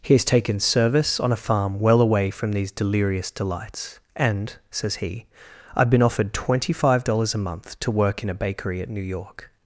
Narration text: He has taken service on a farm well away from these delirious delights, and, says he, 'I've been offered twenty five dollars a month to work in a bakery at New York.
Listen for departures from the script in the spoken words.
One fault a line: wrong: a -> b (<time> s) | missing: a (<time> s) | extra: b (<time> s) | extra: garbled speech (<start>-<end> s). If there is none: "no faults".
no faults